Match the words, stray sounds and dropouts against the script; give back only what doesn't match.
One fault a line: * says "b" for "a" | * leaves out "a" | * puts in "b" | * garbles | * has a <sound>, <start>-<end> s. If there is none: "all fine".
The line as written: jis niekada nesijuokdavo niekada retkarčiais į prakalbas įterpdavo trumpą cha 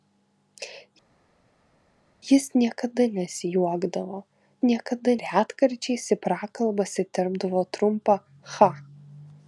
all fine